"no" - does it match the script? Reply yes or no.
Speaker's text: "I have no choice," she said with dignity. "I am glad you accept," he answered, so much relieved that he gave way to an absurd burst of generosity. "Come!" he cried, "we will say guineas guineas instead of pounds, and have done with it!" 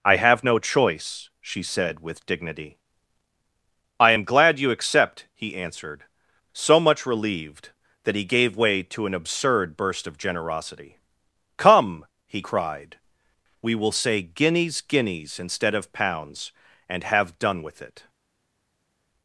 yes